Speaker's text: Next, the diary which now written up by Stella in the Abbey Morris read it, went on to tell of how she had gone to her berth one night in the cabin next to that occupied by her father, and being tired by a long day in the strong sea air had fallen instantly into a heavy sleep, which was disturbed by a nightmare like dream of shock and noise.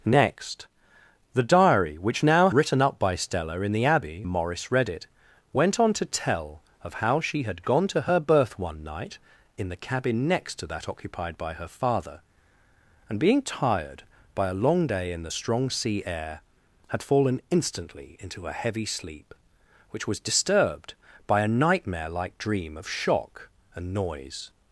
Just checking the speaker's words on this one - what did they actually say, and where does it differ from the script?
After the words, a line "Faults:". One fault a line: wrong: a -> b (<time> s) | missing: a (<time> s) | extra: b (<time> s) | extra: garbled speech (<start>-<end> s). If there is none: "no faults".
Next, the diary which now written up by Stella in the Abbey Morris read it, went on to tell of how she had gone to her berth one night in the cabin next to that occupied by her father, and being tired by a long day in the strong sea air had fallen instantly into a heavy sleep, which was disturbed by a nightmare like dream of shock and noise.
Faults:
no faults